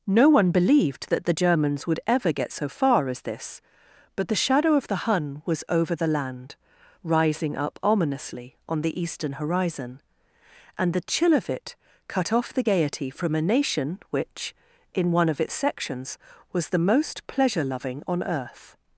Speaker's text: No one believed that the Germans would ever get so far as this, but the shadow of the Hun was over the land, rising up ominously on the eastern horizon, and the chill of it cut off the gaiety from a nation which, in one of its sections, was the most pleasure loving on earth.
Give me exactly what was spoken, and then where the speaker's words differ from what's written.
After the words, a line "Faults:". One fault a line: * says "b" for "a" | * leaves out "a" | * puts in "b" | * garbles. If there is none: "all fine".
No one believed that the Germans would ever get so far as this, but the shadow of the Hun was over the land, rising up ominously on the eastern horizon, and the chill of it cut off the gaiety from a nation which, in one of its sections, was the most pleasure loving on earth.
Faults:
all fine